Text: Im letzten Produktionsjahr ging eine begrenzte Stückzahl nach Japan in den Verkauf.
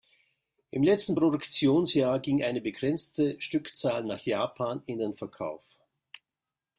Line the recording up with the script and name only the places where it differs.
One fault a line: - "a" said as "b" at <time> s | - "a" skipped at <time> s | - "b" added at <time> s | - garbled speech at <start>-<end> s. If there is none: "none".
none